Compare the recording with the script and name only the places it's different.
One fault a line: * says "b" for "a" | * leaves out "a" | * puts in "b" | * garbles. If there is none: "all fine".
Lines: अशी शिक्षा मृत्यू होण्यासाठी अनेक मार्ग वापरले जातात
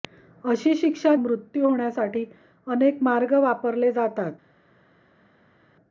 all fine